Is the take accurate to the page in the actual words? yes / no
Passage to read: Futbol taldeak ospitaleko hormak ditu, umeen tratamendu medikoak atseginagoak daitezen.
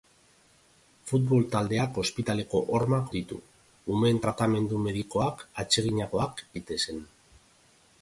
yes